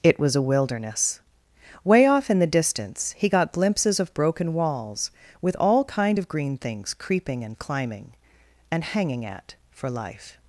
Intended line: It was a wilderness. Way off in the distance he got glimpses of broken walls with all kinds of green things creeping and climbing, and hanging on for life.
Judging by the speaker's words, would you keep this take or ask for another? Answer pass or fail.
fail